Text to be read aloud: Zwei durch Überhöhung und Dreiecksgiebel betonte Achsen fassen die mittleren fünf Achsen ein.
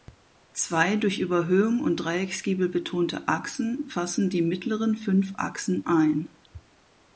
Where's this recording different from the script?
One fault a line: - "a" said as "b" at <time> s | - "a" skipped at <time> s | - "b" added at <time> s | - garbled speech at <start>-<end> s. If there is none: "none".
none